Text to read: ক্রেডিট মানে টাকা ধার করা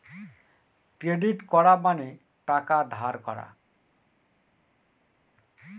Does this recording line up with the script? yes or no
no